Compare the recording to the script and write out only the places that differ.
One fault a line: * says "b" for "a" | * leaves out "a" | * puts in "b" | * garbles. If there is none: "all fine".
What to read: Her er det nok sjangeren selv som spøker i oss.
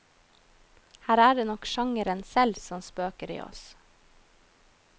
all fine